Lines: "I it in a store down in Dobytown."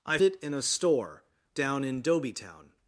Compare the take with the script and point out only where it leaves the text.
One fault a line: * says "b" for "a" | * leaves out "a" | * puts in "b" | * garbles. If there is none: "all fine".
all fine